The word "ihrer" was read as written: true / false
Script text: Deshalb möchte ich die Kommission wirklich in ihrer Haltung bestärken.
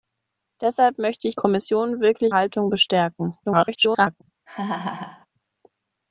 false